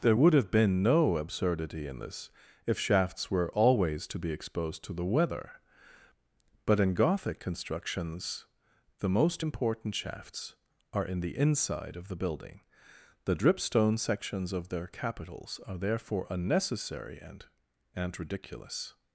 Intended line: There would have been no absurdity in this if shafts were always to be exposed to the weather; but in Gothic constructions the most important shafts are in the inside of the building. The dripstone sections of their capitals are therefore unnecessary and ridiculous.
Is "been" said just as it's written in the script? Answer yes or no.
yes